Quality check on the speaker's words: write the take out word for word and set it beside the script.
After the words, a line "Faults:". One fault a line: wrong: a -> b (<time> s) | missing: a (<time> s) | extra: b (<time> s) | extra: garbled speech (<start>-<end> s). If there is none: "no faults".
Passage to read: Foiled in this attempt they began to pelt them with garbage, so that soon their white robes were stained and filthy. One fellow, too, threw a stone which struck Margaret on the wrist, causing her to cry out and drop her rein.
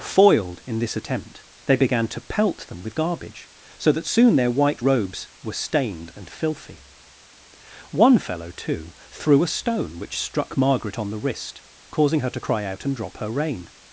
Foiled in this attempt they began to pelt them with garbage, so that soon their white robes were stained and filthy. One fellow, too, threw a stone which struck Margaret on the wrist, causing her to cry out and drop her rein.
Faults:
no faults